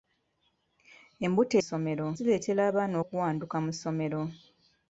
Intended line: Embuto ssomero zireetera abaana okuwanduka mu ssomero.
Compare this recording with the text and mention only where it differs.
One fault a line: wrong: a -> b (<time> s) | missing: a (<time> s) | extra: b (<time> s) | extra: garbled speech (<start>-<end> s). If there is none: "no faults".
no faults